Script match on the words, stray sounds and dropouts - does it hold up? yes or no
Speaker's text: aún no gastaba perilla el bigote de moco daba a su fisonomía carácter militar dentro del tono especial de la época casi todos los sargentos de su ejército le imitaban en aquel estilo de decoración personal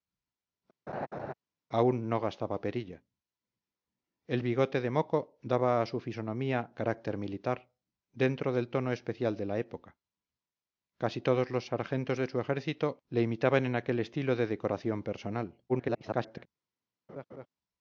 no